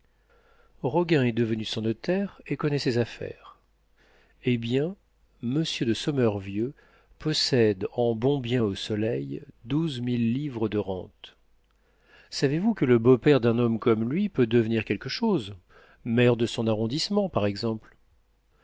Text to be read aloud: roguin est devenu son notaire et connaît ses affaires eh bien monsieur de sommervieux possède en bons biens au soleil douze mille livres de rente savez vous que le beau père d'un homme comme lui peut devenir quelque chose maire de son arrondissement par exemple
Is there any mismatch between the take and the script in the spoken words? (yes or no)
no